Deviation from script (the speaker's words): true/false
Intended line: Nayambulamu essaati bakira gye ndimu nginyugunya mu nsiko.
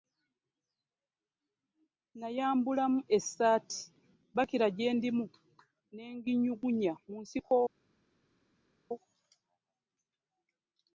true